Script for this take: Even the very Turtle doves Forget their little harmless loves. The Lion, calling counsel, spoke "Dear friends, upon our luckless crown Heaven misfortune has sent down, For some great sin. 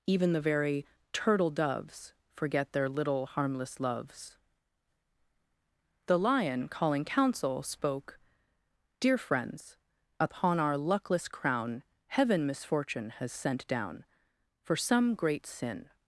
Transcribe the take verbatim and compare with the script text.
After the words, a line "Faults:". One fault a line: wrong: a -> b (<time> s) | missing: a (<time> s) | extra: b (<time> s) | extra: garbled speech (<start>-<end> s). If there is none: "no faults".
Even the very Turtle doves Forget their little harmless loves. The Lion, calling counsel, spoke "Dear friends, upon our luckless crown Heaven misfortune has sent down, For some great sin.
Faults:
no faults